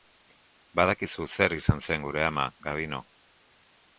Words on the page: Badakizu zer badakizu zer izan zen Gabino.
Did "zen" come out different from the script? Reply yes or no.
yes